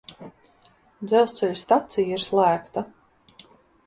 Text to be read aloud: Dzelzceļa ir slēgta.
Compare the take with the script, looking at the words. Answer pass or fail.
fail